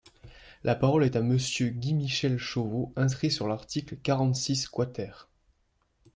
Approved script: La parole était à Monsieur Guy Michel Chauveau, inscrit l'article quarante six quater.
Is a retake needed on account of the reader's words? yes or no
yes